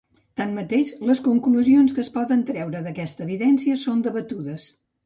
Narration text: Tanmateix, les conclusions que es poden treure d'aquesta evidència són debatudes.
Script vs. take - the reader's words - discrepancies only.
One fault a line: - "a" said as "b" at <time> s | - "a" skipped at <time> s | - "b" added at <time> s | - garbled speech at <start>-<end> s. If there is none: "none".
none